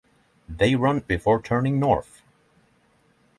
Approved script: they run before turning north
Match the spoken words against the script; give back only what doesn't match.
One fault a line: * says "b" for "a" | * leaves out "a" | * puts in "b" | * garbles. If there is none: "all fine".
all fine